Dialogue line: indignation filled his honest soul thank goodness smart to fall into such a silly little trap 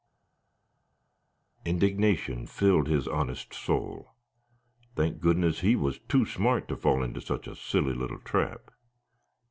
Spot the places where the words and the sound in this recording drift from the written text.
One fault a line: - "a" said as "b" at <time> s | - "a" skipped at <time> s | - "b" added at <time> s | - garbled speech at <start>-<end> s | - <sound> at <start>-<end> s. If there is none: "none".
- "he was too" added at 5.6 s